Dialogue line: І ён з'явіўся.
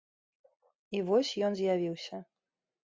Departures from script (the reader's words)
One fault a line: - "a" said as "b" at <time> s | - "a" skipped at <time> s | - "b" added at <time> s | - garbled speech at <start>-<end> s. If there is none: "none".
- "вось" added at 1.1 s